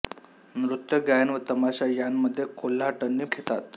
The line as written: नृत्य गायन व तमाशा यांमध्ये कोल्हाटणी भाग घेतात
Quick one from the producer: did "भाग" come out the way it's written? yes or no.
no